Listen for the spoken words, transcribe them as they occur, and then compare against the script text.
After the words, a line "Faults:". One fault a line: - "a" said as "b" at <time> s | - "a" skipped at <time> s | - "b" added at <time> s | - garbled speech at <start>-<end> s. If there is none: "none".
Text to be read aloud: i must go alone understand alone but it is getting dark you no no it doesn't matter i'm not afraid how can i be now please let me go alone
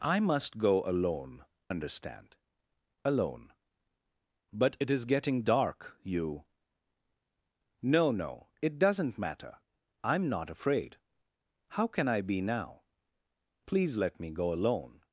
i must go alone understand alone but it is getting dark you no no it doesn't matter i'm not afraid how can i be now please let me go alone
Faults:
none